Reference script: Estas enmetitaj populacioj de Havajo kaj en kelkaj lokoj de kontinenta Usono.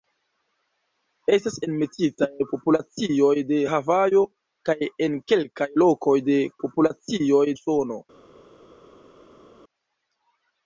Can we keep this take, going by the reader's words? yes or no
no